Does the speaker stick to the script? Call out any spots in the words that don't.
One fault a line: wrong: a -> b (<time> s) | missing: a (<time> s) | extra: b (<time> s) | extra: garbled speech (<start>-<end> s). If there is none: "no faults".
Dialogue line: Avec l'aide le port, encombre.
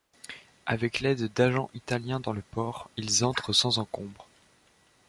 extra: d'agents italiens dans (1.3 s)
extra: ils entrent sans (2.9 s)